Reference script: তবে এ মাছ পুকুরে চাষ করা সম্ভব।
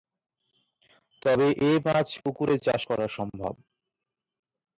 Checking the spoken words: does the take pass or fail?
pass